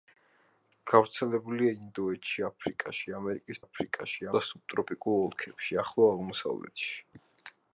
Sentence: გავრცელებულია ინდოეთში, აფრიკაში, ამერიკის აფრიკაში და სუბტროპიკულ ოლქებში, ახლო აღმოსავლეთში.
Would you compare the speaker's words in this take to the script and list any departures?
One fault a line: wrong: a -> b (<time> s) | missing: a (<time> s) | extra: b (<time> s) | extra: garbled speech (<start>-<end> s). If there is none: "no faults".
no faults